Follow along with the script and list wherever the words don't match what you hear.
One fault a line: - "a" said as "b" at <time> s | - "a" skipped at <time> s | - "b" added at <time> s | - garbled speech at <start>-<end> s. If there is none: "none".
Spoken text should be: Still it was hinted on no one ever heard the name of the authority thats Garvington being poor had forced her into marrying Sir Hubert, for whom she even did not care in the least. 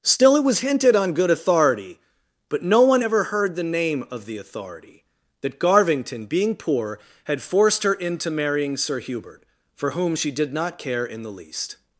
- "good authority but" added at 1.1 s
- "thats" said as "that" at 5.4 s
- "even" skipped at 10.3 s